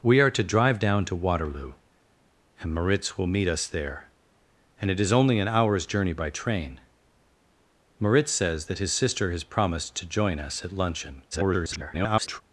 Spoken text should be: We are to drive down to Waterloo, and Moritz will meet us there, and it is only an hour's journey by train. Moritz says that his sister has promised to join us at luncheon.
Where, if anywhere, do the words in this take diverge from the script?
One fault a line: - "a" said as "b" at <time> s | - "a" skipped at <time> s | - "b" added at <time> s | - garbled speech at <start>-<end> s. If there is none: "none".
- garbled speech at 11.3-12.4 s